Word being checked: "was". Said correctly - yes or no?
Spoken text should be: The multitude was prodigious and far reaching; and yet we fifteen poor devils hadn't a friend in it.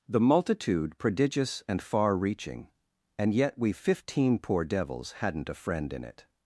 no